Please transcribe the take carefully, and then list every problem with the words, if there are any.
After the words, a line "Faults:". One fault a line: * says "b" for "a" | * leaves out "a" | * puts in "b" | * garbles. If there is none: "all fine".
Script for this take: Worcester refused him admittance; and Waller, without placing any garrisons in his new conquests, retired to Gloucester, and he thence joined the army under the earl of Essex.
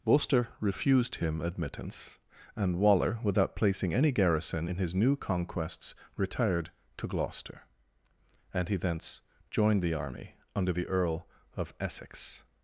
Worcester refused him admittance; and Waller, without placing any garrison in his new conquests, retired to Gloucester, and he thence joined the army under the earl of Essex.
Faults:
* says "garrison" for "garrisons"